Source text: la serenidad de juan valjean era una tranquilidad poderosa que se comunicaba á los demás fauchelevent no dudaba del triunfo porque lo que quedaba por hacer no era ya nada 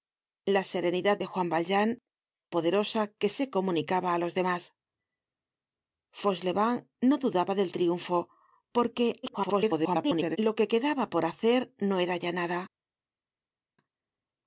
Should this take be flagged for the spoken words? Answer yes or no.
yes